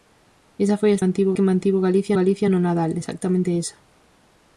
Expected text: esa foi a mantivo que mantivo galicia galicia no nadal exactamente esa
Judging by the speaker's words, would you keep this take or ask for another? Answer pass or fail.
pass